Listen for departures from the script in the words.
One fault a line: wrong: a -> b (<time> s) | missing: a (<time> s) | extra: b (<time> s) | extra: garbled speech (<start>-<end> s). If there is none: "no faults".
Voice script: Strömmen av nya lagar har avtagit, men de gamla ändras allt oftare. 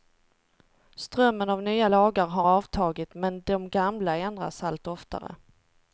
no faults